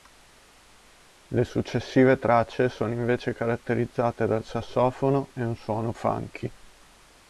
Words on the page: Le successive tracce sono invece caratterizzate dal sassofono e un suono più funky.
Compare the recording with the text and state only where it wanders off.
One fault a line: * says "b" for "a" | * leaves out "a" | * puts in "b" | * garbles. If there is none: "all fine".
* leaves out "più"